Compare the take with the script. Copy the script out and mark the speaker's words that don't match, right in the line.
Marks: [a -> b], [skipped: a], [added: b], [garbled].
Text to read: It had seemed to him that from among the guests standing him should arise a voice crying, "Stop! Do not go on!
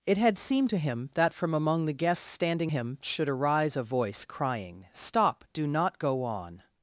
It had seemed to him that from among the guests standing him should arise a voice crying, "Stop! Do not go on!